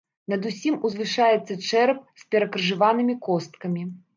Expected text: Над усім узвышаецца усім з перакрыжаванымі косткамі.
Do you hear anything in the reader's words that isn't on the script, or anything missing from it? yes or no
yes